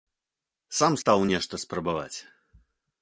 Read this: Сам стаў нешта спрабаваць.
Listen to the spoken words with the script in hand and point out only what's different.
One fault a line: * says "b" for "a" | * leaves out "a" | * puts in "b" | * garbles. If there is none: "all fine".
all fine